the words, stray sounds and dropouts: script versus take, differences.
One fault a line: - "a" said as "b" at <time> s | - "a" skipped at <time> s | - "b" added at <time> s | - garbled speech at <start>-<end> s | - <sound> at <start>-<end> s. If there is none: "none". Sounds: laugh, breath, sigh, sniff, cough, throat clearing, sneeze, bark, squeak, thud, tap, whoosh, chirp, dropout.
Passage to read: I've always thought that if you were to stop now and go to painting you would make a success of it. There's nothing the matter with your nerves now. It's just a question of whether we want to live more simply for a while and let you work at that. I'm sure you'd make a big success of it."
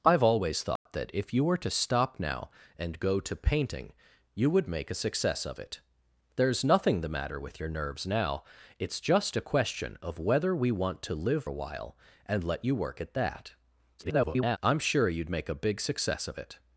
- dropout at 0.8-0.9 s
- "more simply for" skipped at 11.5 s
- garbled speech at 14.0-14.6 s